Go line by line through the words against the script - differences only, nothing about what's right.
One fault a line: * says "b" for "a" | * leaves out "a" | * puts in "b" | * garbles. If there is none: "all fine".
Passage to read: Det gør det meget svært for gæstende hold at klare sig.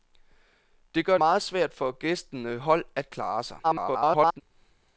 * leaves out "det"
* garbles